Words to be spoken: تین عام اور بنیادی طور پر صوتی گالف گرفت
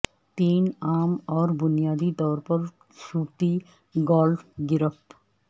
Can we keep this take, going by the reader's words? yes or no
yes